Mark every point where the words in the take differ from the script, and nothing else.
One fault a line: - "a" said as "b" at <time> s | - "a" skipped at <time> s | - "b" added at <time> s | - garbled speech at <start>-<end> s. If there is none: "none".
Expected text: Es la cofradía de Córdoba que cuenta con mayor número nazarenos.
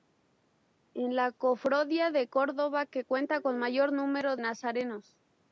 none